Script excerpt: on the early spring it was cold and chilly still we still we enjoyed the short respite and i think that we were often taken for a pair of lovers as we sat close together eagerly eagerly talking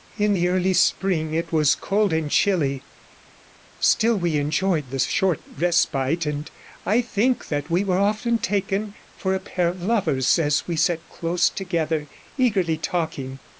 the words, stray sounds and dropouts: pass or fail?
fail